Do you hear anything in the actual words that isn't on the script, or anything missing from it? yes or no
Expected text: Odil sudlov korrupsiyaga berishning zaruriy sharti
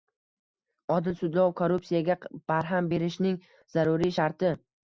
yes